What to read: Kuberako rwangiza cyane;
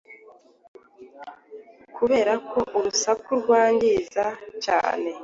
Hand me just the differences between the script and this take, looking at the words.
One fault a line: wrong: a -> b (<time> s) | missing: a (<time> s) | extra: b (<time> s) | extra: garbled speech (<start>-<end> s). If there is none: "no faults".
extra: urusaku (2.8 s)